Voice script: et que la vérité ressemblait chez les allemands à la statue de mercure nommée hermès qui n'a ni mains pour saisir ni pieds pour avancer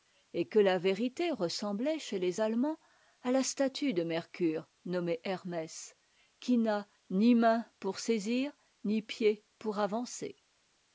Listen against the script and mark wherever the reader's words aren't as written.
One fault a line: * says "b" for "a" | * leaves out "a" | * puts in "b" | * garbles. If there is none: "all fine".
all fine